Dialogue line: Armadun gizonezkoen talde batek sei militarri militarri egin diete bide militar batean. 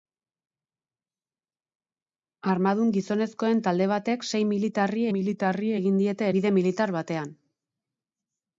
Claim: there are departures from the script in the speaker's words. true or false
false